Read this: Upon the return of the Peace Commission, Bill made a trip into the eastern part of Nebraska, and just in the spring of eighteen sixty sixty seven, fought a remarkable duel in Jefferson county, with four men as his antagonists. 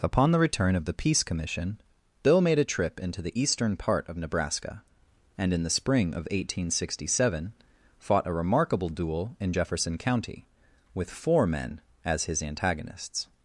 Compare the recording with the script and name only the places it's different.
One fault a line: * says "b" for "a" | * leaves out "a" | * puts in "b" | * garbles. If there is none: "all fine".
* leaves out "just"
* leaves out "sixty"